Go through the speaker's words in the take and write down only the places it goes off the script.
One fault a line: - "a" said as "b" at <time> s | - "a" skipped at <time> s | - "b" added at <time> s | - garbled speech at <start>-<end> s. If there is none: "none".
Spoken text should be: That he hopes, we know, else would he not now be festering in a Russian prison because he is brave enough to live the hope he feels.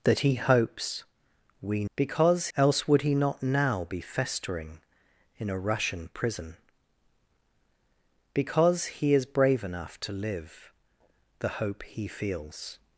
- "know" said as "because" at 1.9 s